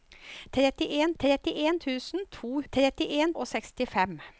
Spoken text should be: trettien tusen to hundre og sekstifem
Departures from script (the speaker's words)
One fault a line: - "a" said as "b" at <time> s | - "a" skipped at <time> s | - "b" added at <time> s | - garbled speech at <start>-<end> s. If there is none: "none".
- "trettien" added at 1.2 s
- "hundre" said as "trettien" at 2.7 s